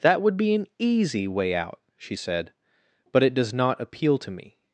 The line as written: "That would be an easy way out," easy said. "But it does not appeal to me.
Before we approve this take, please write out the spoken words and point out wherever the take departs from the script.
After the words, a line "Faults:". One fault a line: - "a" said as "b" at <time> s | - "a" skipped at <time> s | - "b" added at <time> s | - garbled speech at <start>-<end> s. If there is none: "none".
"That would be an easy way out," she said. "But it does not appeal to me.
Faults:
- "easy" said as "she" at 2.0 s